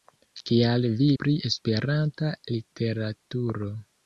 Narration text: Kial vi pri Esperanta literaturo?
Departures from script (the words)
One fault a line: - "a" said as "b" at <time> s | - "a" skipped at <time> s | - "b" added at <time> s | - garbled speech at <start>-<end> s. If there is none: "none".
none